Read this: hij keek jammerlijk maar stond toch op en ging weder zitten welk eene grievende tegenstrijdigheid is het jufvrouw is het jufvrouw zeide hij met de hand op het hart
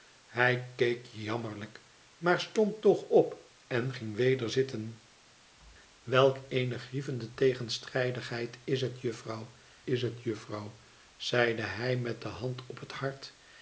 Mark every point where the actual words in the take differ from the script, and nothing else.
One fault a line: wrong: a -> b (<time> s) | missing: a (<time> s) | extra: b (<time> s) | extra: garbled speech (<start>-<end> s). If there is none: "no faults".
no faults